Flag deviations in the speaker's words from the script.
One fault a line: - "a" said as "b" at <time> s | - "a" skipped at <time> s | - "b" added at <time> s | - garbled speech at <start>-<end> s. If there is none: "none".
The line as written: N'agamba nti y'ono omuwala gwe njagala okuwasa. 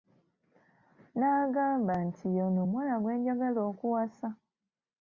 none